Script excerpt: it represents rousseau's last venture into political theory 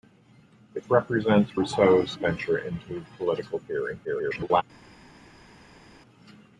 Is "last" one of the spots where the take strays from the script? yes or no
yes